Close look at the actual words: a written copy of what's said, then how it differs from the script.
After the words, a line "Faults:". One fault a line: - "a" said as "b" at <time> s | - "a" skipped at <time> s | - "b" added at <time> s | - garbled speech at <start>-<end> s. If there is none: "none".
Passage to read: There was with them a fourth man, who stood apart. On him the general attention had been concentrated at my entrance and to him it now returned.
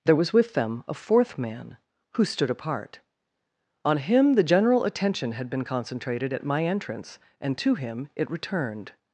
There was with them a fourth man, who stood apart. On him the general attention had been concentrated at my entrance and to him it returned.
Faults:
- "now" skipped at 8.3 s